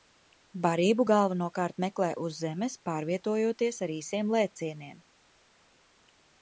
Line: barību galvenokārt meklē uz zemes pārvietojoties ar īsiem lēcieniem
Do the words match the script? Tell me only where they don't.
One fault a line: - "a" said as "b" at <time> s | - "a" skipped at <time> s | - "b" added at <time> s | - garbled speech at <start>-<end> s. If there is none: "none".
none